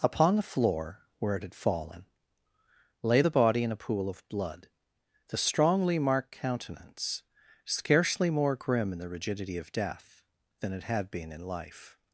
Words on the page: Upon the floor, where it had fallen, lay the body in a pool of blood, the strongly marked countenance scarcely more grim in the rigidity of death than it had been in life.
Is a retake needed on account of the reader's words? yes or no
no